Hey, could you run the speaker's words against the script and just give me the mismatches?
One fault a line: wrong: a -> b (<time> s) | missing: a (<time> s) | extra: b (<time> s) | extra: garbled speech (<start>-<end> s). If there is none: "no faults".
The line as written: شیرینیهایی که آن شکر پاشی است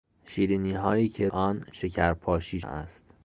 no faults